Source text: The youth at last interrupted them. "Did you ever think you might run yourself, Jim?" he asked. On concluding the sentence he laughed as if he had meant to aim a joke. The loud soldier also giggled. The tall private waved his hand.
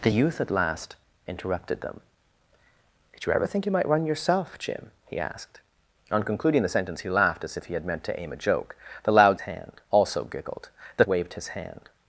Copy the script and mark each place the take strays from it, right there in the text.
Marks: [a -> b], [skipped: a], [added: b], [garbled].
The youth at last interrupted them. "Did you ever think you might run yourself, Jim?" he asked. On concluding the sentence he laughed as if he had meant to aim a joke. The loud [soldier -> hand] also giggled. The [skipped: tall private] waved his hand.